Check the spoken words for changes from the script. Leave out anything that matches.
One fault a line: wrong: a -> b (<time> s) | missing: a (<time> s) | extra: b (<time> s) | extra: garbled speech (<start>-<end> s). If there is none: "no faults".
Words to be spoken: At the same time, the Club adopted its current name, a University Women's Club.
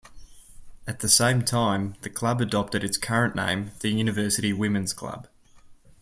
wrong: a -> the (3.8 s)